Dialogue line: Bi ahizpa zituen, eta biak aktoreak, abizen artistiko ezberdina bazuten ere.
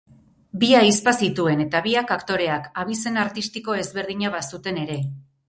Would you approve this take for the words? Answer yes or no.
yes